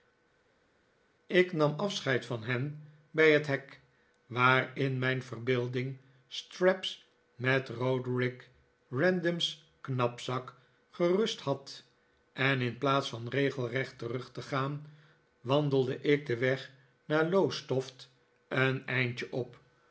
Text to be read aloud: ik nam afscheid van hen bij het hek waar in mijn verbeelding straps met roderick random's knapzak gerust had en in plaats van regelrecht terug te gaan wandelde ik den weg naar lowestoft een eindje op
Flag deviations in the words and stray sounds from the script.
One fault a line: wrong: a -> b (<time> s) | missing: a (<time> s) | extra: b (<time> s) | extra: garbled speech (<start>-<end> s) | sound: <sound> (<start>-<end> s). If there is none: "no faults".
no faults